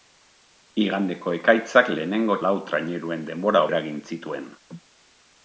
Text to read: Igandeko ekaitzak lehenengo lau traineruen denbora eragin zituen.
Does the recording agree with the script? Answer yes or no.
yes